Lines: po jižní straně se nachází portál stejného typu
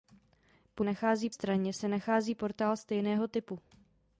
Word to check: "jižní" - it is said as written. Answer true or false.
false